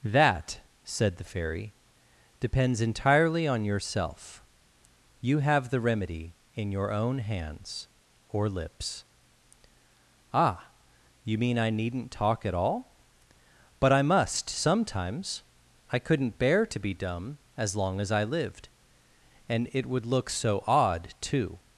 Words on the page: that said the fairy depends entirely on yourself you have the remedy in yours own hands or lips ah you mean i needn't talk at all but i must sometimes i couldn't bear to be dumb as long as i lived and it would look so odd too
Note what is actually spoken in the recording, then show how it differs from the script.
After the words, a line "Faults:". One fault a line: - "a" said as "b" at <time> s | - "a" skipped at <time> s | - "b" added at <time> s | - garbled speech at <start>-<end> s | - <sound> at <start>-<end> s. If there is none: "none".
that said the fairy depends entirely on yourself you have the remedy in your own hands or lips ah you mean i needn't talk at all but i must sometimes i couldn't bear to be dumb as long as i lived and it would look so odd too
Faults:
- "yours" said as "your" at 6.7 s